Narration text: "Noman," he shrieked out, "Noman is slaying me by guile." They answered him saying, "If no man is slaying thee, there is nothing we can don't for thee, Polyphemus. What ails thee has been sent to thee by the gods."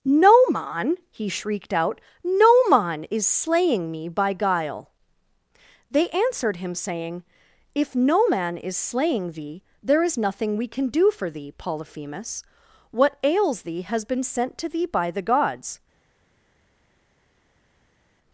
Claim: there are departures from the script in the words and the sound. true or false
true